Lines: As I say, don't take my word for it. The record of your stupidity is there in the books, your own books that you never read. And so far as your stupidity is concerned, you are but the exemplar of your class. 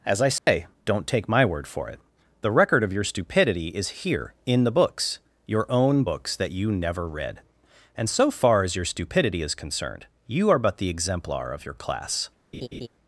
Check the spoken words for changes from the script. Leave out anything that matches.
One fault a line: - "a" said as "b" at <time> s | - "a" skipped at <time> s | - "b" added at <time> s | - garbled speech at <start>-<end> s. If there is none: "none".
- "there" said as "here" at 3.9 s